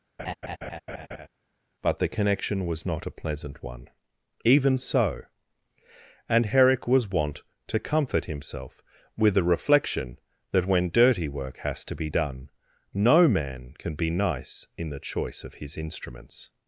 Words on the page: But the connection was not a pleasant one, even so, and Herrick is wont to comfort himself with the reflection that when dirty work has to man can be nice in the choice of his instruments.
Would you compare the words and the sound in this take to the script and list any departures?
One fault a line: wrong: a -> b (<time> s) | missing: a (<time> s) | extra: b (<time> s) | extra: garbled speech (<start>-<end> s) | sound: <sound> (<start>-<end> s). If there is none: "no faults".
sound: laugh (0.2-1.3 s)
wrong: is -> was (6.9 s)
extra: be done no (11.9 s)